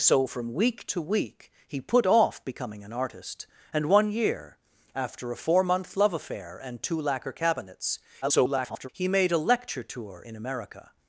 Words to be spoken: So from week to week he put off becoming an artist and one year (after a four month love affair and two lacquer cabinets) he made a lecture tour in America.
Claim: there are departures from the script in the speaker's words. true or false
true